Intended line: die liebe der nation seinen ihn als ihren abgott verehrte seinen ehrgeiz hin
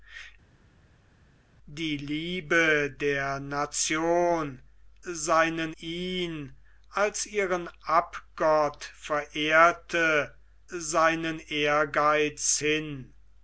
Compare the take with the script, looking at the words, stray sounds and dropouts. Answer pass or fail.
pass